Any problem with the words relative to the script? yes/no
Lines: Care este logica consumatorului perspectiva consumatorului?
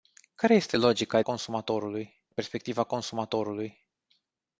no